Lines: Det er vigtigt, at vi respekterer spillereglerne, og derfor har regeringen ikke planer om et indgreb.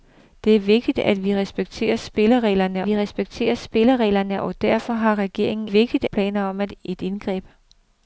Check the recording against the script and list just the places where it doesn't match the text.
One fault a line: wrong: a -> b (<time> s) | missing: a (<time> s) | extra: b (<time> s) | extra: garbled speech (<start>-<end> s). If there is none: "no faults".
extra: vi respekterer spillereglerne (2.8 s)
wrong: ikke -> vigtigt (5.6 s)